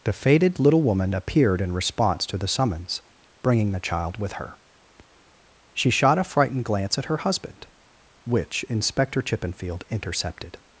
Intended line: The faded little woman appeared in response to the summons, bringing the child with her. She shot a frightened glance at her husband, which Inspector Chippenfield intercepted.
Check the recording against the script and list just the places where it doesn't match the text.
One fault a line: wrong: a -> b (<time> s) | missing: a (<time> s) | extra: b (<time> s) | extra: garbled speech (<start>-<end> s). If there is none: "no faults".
no faults